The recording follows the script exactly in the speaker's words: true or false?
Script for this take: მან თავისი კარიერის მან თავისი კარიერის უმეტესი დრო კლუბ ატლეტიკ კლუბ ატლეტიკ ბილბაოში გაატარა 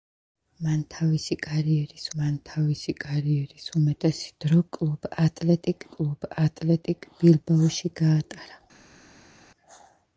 true